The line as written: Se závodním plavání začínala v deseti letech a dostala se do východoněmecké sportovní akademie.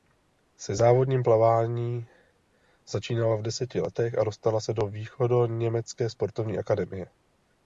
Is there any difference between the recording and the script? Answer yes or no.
no